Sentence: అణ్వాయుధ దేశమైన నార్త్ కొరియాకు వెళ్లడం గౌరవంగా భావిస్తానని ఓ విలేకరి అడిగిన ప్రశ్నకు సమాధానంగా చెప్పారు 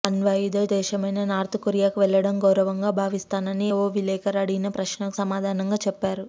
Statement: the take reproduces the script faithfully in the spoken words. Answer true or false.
true